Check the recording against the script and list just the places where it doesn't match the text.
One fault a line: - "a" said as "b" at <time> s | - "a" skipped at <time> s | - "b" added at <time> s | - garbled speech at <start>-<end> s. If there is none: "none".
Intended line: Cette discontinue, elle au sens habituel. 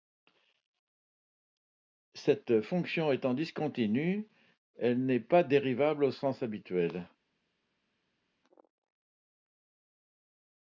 - "fonction étant" added at 2.6 s
- "n'est pas dérivable" added at 5.0 s